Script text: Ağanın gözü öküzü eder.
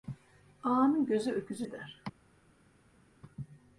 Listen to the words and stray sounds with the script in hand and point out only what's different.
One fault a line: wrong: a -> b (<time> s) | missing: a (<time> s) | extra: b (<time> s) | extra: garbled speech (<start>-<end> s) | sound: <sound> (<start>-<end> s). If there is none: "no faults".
no faults